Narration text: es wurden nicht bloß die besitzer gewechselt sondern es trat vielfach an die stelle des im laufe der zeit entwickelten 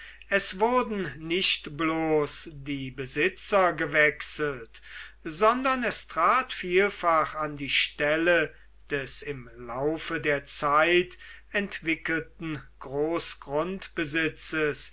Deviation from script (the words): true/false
false